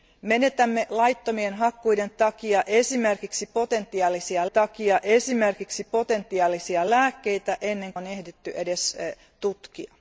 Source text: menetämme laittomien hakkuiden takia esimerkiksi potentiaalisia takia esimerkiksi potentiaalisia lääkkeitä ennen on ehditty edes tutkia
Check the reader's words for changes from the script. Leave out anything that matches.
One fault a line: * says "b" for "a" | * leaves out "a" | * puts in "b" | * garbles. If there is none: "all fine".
all fine